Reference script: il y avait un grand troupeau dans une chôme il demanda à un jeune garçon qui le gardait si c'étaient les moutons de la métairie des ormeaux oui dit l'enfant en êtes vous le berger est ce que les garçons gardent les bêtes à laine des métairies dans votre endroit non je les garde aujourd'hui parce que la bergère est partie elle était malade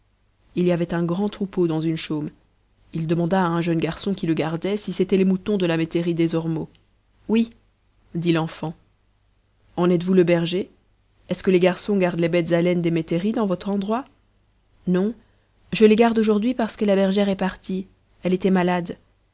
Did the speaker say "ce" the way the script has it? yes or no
yes